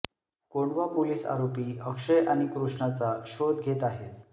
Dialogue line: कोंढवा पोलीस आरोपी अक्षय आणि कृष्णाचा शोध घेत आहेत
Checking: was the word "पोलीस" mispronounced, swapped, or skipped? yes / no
no